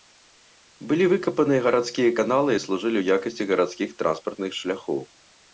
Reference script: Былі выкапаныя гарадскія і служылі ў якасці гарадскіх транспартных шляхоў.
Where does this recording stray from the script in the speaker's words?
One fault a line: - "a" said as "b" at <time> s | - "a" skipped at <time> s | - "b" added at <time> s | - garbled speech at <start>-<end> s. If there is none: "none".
- "каналы" added at 2.2 s